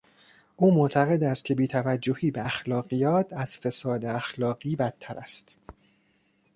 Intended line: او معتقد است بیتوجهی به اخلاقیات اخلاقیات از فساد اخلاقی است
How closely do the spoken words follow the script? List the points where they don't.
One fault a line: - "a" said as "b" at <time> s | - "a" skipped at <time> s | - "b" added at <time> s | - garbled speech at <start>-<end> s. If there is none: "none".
- "که" added at 1.4 s
- "اخلاقیات" skipped at 3.3 s
- "بدتر" added at 4.7 s